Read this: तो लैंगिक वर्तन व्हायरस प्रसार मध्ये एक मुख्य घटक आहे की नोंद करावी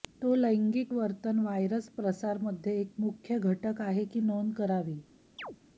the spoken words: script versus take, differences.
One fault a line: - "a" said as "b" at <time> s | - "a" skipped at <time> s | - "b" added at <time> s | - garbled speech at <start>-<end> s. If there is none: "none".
none